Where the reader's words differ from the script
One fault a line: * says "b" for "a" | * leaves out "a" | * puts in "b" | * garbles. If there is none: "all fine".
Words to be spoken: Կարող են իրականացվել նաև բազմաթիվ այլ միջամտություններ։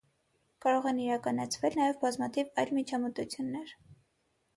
all fine